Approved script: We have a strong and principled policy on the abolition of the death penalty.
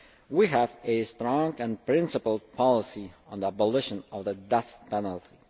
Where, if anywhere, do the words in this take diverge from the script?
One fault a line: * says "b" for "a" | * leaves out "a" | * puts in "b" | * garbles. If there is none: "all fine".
all fine